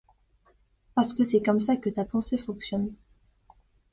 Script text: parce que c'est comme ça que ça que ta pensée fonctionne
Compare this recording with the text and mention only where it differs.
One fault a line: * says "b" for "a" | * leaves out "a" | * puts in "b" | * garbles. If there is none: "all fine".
* leaves out "ça que"